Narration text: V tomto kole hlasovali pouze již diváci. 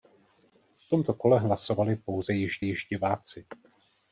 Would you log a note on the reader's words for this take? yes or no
yes